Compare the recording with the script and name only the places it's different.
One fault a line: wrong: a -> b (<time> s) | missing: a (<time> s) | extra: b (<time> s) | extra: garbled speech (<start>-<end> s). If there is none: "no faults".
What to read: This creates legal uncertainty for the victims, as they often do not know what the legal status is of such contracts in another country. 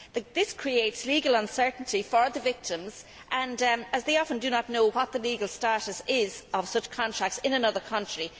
no faults